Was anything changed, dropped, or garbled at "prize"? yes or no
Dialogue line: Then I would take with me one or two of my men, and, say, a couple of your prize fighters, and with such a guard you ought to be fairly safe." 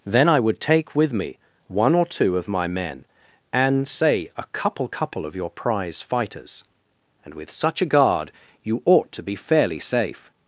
no